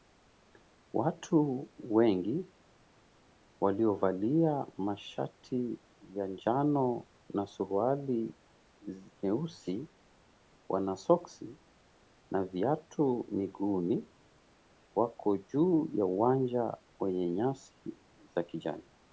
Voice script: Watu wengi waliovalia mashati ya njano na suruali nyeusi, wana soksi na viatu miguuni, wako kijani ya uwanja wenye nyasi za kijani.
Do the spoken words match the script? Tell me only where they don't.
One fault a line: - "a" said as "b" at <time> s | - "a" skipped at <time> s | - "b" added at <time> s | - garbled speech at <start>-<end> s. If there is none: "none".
- "kijani" said as "juu" at 15.4 s